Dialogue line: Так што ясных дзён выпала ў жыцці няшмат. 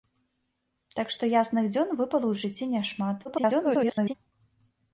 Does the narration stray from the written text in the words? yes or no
yes